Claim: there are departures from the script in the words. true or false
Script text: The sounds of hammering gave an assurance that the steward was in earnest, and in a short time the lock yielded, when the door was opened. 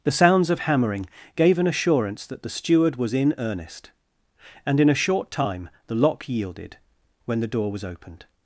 false